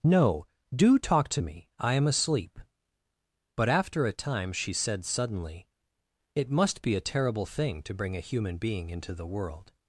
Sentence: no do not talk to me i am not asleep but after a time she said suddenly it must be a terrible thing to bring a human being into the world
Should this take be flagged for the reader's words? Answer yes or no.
yes